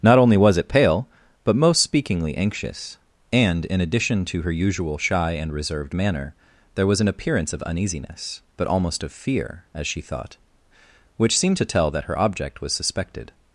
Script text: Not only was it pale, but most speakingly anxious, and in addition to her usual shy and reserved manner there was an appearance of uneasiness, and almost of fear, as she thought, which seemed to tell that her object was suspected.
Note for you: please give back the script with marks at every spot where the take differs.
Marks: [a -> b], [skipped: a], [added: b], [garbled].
Not only was it pale, but most speakingly anxious, and in addition to her usual shy and reserved manner there was an appearance of uneasiness, [and -> but] almost of fear, as she thought, which seemed to tell that her object was suspected.